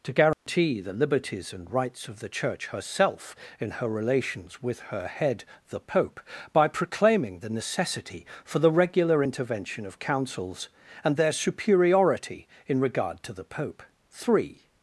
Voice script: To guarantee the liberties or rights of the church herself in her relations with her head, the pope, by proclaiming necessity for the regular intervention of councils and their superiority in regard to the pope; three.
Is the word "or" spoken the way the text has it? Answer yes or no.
no